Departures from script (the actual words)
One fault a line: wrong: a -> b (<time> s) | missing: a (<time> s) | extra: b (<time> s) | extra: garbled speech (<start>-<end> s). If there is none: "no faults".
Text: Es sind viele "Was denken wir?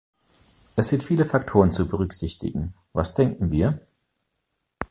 extra: Faktoren zu berücksichtigen (1.2 s)